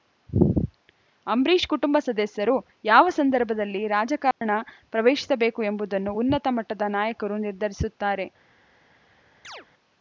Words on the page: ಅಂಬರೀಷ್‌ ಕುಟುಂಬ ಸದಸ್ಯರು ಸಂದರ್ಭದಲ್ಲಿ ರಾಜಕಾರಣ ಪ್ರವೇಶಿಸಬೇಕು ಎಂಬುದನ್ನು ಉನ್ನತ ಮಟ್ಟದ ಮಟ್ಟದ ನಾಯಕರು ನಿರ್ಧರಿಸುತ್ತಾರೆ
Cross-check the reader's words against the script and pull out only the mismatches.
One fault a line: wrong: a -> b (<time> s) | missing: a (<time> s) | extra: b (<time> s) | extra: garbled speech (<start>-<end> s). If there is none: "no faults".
extra: ಯಾವ (2.8 s)
missing: ಮಟ್ಟದ (6.9 s)